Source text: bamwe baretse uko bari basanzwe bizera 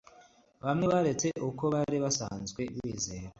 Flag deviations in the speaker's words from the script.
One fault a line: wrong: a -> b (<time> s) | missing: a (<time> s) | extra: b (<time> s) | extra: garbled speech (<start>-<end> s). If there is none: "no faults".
no faults